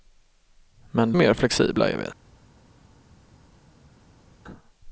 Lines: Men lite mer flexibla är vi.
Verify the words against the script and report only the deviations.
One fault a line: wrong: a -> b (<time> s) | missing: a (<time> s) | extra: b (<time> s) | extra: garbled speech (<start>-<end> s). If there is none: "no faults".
missing: lite (1.1 s)